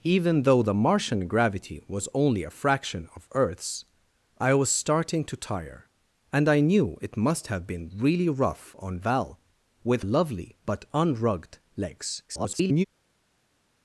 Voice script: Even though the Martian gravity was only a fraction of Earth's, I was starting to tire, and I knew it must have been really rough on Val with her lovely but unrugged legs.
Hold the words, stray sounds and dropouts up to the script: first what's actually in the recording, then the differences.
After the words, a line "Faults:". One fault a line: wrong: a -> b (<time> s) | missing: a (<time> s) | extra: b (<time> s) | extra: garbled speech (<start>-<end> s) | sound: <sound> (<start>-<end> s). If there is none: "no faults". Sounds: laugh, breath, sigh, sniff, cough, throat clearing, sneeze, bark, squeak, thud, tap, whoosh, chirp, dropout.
Even though the Martian gravity was only a fraction of Earth's, I was starting to tire, and I knew it must have been really rough on Val with lovely but unrugged legs. [garbled]
Faults:
missing: her (10.1 s)
extra: garbled speech (12.3-12.8 s)